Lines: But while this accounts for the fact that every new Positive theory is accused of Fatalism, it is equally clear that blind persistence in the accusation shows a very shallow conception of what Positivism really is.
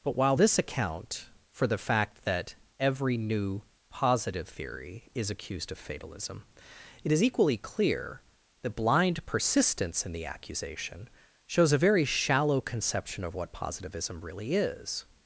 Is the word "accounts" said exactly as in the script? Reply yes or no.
no